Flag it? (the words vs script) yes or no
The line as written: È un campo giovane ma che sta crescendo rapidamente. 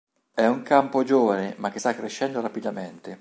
no